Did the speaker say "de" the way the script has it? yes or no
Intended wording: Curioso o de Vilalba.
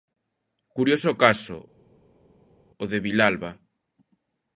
yes